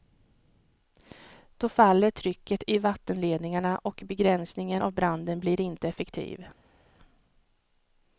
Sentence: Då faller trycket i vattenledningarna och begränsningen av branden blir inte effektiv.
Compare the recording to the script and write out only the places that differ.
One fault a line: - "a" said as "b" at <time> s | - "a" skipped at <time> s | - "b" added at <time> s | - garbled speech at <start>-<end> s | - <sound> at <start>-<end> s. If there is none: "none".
none